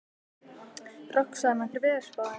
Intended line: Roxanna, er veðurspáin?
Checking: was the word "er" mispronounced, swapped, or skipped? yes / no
no